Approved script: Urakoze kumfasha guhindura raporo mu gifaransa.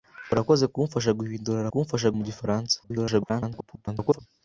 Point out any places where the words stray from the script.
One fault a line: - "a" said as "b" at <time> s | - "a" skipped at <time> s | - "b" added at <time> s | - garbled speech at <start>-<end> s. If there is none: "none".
- "raporo" said as "kumfasha" at 1.7 s
- garbled speech at 2.8-4.2 s